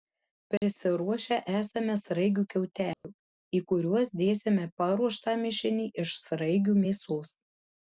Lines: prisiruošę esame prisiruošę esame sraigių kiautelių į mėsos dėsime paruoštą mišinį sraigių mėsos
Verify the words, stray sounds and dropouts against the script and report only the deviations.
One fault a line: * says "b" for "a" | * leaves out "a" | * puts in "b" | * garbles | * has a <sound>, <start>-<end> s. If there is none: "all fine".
* has a dropout, 0.6-0.6 s
* leaves out "prisiruošę esame"
* has a dropout, 2.9-3.0 s
* says "kuriuos" for "mėsos"
* puts in "iš"